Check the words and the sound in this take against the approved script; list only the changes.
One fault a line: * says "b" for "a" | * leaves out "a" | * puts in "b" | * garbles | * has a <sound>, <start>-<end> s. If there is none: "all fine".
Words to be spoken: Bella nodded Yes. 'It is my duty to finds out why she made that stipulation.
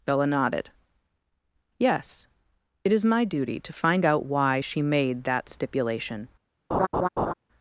* says "find" for "finds"
* has a laugh, 6.7-7.3 s